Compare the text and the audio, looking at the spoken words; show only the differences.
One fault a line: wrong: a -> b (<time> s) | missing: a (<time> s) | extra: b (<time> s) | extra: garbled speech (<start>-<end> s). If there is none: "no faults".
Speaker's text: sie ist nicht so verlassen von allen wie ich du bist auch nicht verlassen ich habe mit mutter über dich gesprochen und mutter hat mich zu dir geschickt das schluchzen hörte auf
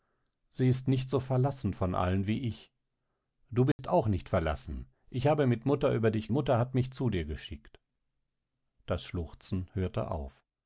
missing: gesprochen und (6.3 s)